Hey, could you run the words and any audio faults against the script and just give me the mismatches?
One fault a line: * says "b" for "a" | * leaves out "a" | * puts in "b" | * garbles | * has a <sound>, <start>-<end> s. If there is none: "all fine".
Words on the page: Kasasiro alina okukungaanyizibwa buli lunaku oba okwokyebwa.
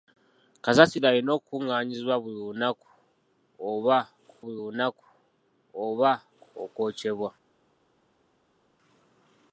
* puts in "buli lunaku oba"